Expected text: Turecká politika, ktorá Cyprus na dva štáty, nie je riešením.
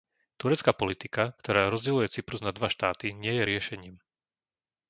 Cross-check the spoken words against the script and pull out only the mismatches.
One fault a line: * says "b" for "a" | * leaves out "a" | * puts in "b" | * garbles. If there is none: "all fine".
* puts in "rozdeľuje"